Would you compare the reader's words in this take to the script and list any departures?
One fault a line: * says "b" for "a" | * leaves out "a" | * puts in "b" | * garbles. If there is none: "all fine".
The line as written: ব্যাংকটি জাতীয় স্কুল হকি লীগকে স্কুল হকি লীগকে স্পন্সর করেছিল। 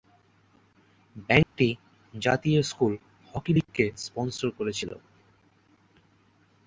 * leaves out "স্কুল হকি লীগকে"